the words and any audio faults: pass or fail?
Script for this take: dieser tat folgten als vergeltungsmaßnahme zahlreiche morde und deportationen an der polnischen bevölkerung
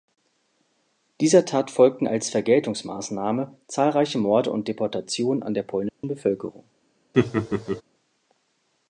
fail